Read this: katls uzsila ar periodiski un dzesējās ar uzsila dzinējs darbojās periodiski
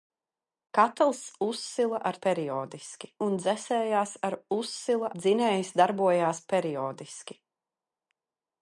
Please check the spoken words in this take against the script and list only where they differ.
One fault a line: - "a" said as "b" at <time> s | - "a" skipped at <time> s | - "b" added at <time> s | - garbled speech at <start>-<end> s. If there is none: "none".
none